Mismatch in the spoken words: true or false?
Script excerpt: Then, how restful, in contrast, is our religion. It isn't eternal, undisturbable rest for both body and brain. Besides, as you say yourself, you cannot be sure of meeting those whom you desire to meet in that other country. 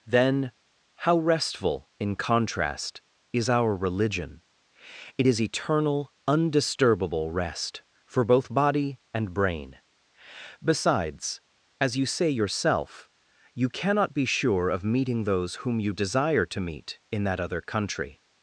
true